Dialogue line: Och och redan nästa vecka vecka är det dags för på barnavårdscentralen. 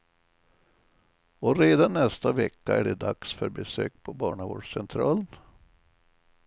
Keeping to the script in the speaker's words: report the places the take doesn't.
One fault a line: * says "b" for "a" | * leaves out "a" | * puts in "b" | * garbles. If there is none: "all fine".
* leaves out "och"
* leaves out "vecka"
* puts in "besök"